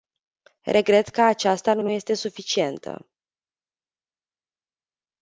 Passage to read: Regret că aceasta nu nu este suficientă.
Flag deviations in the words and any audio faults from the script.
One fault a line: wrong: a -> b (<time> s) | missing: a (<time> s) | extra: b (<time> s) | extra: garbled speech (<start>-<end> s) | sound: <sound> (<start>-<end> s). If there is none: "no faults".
no faults